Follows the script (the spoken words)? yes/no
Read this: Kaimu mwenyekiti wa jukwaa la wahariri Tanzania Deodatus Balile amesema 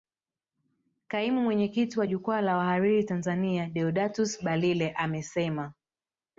yes